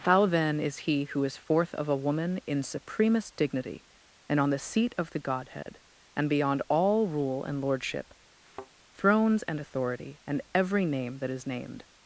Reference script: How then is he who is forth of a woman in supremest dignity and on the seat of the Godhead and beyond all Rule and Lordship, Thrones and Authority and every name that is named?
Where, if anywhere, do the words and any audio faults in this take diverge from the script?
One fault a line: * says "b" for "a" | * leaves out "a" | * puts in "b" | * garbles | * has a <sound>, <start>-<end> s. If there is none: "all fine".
* has a dropout, 5.6-5.7 s
* has a thud, 8.4-8.7 s